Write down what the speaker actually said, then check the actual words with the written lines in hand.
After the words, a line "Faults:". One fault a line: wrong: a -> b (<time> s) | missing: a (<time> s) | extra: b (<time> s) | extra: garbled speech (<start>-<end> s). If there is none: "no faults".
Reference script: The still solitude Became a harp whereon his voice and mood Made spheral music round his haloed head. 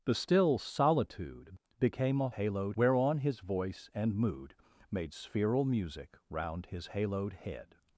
The still solitude Became a haloed whereon his voice and mood Made spheral music round his haloed head.
Faults:
wrong: harp -> haloed (2.3 s)